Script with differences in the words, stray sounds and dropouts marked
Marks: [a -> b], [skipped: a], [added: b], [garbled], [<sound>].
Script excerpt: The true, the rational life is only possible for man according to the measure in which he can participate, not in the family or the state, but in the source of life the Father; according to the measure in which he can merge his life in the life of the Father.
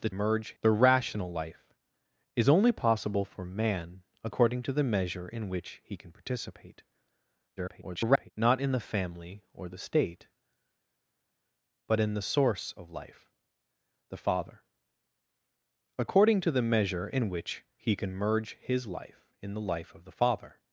The [true, -> merge] the rational life is only possible for man according to the measure in which he can participate, [garbled] not in the family or the state, but in the source of life the Father; according to the measure in which he can merge his life in the life of the Father.